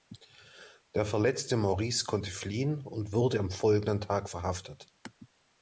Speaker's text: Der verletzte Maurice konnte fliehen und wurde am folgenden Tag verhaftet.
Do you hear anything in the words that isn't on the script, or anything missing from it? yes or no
no